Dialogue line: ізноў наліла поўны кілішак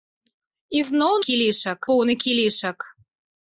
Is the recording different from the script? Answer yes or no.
yes